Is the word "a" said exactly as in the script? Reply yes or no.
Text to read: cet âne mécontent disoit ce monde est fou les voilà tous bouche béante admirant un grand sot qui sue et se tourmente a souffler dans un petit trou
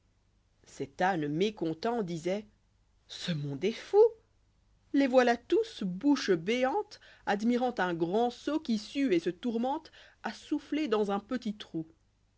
yes